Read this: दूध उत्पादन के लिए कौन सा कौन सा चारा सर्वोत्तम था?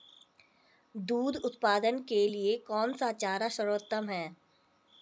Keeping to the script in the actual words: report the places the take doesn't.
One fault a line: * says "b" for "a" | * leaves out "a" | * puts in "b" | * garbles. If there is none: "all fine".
* leaves out "कौन सा"
* says "है" for "था"